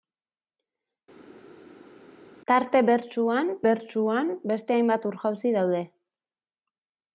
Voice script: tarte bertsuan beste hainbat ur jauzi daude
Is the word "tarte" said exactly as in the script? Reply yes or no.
yes